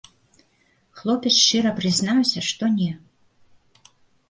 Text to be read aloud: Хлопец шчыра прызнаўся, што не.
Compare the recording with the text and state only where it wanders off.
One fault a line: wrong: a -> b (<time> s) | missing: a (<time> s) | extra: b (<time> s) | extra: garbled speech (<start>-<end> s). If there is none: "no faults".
no faults